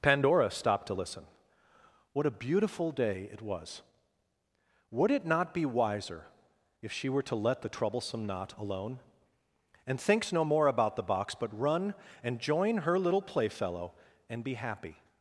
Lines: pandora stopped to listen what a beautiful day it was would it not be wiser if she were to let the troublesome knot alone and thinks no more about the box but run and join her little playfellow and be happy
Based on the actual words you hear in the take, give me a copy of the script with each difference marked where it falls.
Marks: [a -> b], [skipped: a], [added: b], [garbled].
pandora stopped to listen what a beautiful day it was would it not be wiser if she were to let the troublesome knot alone and thinks no more about the box but run and join her little playfellow and be happy